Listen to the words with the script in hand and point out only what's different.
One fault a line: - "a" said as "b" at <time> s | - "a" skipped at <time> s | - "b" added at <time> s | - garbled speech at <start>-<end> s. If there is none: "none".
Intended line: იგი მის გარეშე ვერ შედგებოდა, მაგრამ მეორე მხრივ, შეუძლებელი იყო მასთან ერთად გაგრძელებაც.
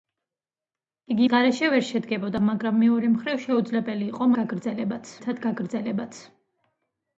- "მის" skipped at 1.3 s
- "მასთან" said as "გაგრძელებაც" at 4.4 s